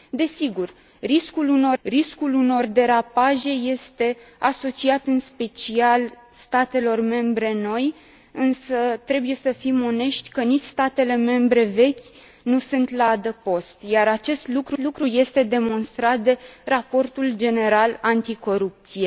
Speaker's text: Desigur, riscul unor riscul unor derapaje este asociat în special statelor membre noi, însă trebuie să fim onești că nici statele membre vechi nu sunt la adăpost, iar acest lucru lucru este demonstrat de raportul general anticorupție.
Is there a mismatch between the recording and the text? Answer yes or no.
no